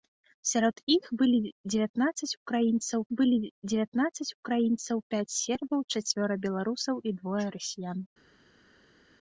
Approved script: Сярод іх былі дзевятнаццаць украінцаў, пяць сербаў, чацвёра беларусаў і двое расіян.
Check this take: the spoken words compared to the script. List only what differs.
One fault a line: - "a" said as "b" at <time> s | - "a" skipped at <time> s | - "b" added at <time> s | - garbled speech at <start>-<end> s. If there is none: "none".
- "былі дзевятнаццаць украінцаў" added at 3.2 s